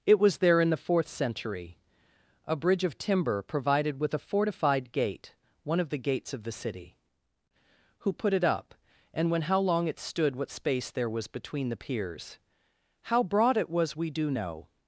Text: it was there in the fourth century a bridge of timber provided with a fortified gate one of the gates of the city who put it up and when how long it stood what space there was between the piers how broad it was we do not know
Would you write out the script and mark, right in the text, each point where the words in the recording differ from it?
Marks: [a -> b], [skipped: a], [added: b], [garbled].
it was there in the fourth century a bridge of timber provided with a fortified gate one of the gates of the city who put it up and when how long it stood what space there was between the piers how broad it was we do [skipped: not] know